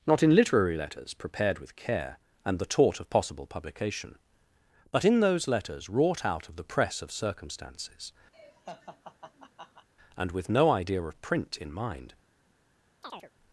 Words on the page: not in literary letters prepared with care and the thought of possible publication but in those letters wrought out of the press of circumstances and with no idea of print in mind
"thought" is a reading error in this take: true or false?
true